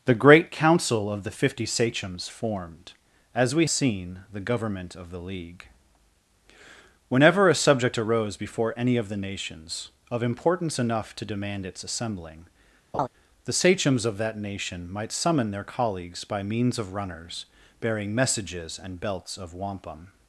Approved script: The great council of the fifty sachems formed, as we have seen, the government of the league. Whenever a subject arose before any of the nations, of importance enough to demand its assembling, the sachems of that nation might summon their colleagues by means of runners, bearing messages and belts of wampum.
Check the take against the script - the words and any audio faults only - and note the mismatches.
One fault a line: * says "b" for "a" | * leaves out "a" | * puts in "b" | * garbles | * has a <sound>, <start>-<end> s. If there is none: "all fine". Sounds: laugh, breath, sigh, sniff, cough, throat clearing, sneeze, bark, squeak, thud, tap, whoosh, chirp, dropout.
* leaves out "have"
* has a laugh, 12.9-13.1 s